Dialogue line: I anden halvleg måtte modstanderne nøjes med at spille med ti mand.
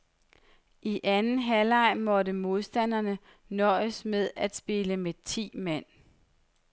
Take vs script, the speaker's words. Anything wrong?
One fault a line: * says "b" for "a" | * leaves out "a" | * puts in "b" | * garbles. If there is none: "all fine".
all fine